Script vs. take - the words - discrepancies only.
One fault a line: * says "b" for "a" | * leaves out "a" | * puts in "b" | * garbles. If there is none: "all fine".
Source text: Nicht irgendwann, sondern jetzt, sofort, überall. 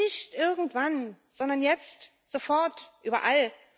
all fine